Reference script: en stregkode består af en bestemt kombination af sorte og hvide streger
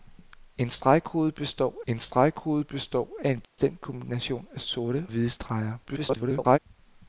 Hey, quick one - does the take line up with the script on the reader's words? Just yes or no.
no